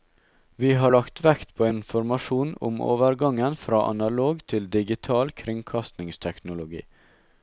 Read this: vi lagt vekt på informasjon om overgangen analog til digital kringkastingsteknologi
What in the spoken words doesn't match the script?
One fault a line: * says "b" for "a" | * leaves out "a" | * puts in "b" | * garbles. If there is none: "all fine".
* puts in "har"
* puts in "fra"